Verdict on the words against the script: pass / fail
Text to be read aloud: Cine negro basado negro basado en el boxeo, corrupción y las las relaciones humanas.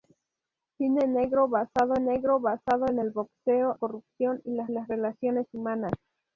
pass